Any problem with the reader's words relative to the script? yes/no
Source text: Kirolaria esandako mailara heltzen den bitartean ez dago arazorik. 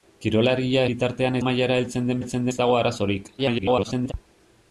yes